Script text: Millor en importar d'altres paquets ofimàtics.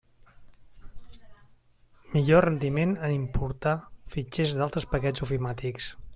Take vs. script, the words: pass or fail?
fail